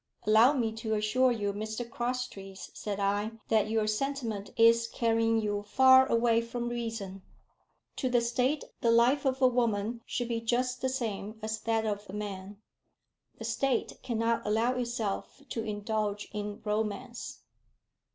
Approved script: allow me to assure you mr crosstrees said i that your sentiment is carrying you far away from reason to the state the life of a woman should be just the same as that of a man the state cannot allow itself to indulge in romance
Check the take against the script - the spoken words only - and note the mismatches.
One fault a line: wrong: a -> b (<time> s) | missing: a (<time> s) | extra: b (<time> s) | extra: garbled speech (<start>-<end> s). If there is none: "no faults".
no faults